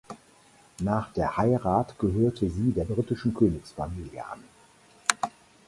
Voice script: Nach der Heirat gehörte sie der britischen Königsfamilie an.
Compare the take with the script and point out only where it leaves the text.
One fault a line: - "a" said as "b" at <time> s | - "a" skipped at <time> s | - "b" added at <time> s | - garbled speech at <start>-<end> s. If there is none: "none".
none